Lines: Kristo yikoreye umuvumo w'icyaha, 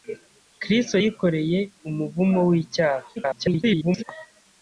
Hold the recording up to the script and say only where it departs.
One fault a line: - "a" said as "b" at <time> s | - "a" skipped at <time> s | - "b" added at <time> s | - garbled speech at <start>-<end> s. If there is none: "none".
- garbled speech at 3.2-4.0 s